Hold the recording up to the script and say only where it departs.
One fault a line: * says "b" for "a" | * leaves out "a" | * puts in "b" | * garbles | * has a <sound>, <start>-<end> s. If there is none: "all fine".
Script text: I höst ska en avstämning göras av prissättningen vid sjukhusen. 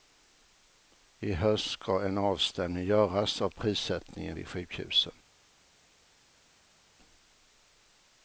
all fine